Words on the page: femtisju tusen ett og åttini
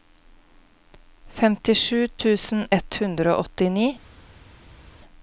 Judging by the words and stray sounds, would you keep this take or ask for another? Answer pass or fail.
fail